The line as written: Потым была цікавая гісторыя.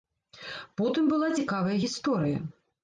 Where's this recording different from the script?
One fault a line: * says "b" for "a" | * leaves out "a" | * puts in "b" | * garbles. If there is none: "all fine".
all fine